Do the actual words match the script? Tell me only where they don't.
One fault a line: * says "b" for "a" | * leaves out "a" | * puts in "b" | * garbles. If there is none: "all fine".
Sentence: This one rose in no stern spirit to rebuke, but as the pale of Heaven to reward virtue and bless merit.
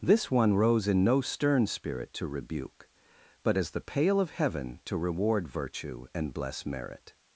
all fine